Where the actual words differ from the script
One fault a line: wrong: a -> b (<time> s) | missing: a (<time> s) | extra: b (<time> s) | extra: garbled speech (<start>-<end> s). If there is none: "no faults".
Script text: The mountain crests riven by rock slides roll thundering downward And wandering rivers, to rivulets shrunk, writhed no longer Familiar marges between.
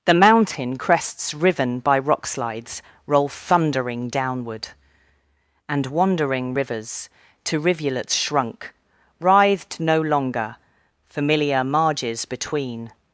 no faults